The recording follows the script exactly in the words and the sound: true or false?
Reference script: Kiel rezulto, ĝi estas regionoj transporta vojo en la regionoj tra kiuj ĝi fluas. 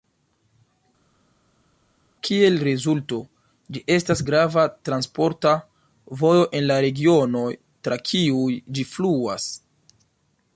false